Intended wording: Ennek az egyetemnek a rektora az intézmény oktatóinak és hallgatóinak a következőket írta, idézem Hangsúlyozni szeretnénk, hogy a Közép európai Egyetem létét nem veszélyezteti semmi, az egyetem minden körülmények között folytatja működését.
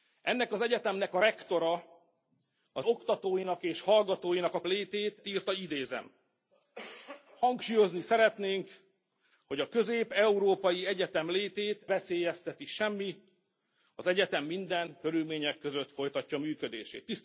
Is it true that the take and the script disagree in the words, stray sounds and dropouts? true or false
true